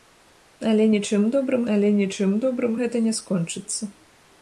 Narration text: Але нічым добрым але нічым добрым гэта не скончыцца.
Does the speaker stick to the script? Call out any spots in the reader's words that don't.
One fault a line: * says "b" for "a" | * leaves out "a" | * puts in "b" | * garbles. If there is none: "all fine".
all fine